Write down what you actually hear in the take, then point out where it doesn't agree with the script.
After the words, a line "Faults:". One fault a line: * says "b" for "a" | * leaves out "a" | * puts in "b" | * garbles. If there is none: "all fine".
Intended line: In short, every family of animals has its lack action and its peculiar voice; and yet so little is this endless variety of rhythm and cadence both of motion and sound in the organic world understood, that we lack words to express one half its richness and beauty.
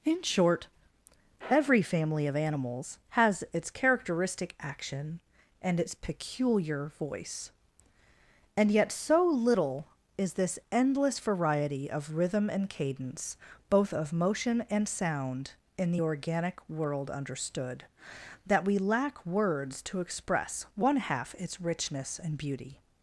In short, every family of animals has its characteristic action and its peculiar voice; and yet so little is this endless variety of rhythm and cadence both of motion and sound in the organic world understood, that we lack words to express one half its richness and beauty.
Faults:
* says "characteristic" for "lack"